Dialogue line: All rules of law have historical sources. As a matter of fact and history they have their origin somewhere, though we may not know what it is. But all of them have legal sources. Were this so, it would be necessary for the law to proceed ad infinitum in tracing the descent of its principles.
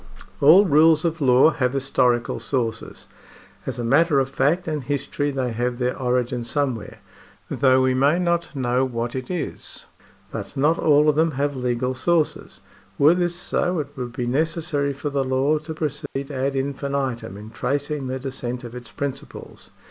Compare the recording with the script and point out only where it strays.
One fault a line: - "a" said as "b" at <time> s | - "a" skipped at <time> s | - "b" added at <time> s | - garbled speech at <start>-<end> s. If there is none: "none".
- "not" added at 10.6 s